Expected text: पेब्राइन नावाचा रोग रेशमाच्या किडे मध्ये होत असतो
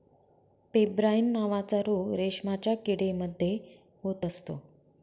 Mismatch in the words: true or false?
false